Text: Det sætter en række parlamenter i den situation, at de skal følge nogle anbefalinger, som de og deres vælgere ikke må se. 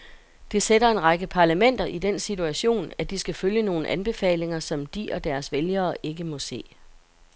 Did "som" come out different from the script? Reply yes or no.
no